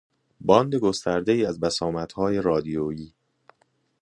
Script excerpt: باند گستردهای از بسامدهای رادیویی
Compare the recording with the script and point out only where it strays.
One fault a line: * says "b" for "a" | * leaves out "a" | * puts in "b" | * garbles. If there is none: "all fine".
all fine